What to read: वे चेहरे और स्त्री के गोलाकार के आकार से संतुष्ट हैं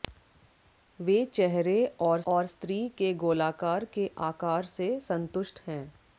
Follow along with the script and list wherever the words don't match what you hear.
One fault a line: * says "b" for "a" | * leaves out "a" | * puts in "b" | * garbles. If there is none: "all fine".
* puts in "और"